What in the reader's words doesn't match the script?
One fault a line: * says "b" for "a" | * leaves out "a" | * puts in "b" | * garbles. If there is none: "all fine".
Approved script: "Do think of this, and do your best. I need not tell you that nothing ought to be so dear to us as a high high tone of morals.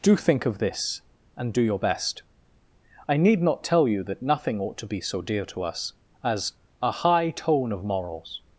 * leaves out "high"